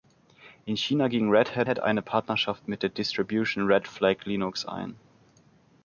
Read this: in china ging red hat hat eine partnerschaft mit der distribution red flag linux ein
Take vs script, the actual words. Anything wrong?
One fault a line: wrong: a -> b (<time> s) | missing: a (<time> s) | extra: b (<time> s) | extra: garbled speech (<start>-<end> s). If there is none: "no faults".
no faults